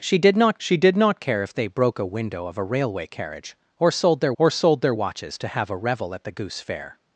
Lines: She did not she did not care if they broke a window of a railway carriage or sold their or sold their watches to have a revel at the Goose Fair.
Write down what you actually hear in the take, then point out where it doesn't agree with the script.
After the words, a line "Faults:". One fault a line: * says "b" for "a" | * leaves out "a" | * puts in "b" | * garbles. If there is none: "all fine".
She did not she did not care if they broke a window of a railway carriage or sold their or sold their watches to have a revel at the Goose Fair.
Faults:
all fine